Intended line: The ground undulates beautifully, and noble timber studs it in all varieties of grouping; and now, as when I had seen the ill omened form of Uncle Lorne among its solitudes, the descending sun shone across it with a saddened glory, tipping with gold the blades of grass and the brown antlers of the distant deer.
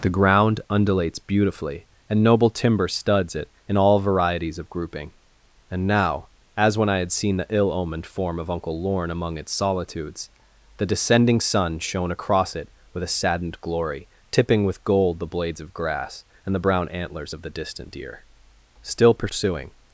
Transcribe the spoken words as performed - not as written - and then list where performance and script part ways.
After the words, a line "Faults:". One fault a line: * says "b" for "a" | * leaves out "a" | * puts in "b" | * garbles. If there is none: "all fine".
The ground undulates beautifully, and noble timber studs it in all varieties of grouping; and now, as when I had seen the ill omened form of Uncle Lorne among its solitudes, the descending sun shone across it with a saddened glory, tipping with gold the blades of grass and the brown antlers of the distant deer. Still pursuing
Faults:
* puts in "Still pursuing"